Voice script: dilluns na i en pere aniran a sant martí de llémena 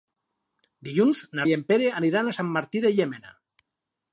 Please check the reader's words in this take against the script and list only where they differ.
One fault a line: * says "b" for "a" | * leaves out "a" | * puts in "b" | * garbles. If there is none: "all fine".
all fine